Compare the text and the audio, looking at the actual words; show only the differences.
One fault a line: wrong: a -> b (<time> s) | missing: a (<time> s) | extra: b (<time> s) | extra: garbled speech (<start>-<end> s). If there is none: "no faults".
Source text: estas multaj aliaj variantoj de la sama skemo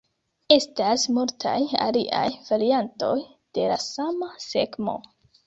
no faults